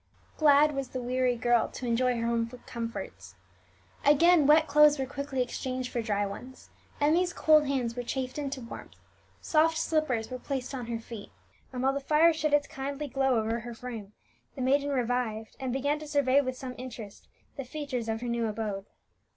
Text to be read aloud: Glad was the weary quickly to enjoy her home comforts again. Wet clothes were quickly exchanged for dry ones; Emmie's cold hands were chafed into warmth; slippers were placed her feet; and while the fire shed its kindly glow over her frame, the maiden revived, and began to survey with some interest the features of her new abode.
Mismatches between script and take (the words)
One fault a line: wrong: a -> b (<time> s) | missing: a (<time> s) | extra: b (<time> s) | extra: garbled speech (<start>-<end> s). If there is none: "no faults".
wrong: quickly -> girl (1.4 s)
extra: soft (9.4 s)
extra: on (10.7 s)